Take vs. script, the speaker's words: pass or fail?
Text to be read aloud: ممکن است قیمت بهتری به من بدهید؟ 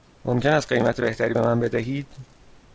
pass